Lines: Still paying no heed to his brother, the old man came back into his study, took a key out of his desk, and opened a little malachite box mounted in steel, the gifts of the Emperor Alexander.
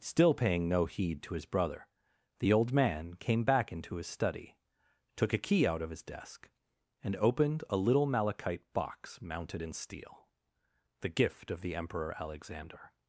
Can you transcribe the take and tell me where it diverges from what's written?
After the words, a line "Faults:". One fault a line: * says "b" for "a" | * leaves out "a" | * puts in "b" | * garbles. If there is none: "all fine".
Still paying no heed to his brother, the old man came back into his study, took a key out of his desk, and opened a little malachite box mounted in steel, the gift of the Emperor Alexander.
Faults:
* says "gift" for "gifts"